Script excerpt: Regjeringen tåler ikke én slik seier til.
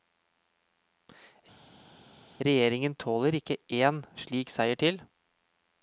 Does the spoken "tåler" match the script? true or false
true